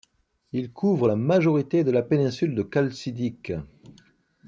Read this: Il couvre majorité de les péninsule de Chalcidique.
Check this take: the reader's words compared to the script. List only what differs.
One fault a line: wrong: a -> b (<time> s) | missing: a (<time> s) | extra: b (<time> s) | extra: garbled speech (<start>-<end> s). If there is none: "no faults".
extra: la (1.0 s)
wrong: les -> la (1.9 s)